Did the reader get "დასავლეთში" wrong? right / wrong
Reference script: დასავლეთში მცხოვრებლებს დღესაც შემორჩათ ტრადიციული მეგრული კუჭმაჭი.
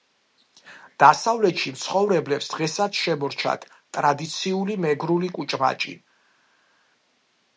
right